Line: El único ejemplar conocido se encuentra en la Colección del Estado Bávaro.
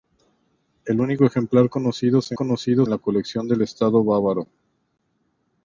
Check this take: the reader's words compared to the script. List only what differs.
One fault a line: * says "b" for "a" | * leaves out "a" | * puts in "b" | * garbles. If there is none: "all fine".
* says "conocido" for "encuentra"